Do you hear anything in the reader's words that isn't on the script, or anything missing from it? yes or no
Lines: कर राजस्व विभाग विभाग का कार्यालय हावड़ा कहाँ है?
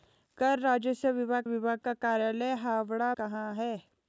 no